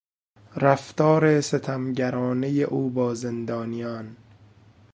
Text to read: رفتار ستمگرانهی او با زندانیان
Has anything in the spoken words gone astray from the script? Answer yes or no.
no